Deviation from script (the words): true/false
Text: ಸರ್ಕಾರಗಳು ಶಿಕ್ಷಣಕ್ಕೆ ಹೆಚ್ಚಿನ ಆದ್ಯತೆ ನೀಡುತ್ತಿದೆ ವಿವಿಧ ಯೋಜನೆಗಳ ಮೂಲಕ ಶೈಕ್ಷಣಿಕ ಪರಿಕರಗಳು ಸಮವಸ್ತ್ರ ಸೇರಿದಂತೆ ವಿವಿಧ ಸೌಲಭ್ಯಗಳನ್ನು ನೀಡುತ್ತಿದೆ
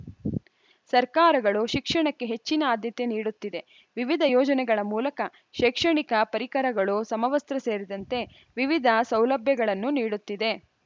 false